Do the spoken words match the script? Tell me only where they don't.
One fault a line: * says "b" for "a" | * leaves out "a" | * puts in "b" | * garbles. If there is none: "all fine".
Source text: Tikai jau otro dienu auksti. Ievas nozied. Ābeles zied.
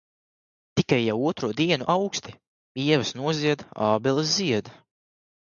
all fine